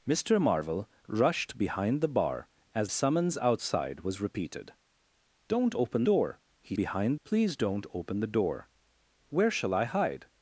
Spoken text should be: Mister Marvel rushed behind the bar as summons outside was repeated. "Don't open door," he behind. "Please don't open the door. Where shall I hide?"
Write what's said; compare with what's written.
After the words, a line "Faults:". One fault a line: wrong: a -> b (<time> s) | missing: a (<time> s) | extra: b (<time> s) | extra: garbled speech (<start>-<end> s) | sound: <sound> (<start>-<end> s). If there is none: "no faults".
Mister Marvel rushed behind the bar as summons outside was repeated. "Don't open door," he behind. "Please don't open the door. Where shall I hide?"
Faults:
no faults